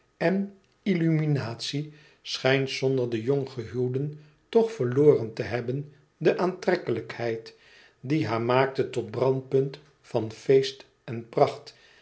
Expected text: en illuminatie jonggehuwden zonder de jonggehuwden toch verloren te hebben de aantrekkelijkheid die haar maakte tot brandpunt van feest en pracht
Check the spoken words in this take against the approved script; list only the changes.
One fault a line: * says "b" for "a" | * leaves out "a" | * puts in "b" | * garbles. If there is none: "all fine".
* says "schijnt" for "jonggehuwden"